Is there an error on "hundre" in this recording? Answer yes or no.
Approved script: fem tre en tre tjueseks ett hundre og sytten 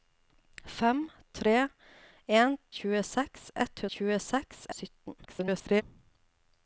yes